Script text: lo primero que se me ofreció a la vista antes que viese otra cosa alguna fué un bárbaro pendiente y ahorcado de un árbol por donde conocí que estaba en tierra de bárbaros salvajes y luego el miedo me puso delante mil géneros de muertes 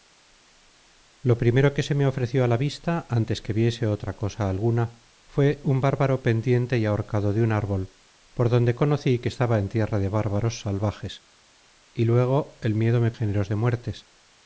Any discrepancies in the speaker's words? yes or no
yes